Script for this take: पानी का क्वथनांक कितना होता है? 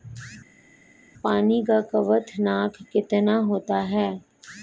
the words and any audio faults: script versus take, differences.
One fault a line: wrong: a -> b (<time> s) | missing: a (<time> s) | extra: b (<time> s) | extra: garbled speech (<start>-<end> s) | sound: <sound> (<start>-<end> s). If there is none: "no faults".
no faults